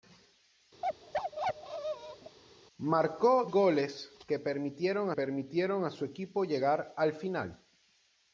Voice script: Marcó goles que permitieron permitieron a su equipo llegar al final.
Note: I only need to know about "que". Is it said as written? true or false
true